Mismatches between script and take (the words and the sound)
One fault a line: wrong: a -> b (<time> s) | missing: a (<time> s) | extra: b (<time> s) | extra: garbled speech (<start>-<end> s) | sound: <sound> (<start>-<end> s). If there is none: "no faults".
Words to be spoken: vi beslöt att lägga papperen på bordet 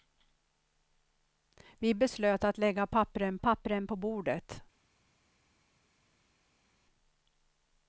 extra: papperen (3.4 s)